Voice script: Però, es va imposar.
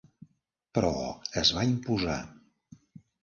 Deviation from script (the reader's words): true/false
false